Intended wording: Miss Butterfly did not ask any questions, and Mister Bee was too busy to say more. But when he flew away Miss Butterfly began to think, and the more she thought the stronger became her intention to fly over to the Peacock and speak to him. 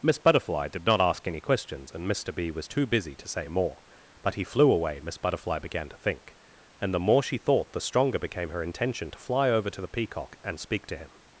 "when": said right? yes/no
no